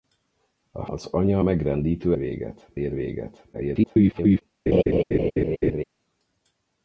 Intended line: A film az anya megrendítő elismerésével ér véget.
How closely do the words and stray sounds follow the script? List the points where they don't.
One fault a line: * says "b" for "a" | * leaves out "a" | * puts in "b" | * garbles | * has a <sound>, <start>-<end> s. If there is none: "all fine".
* leaves out "film"
* says "véget" for "elismerésével"
* garbles
* has a laugh, 4.7-5.8 s